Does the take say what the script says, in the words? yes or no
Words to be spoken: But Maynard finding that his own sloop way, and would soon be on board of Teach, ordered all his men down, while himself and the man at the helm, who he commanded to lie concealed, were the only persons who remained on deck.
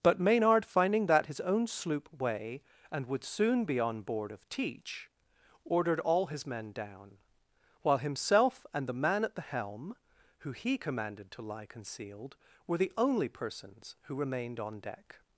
yes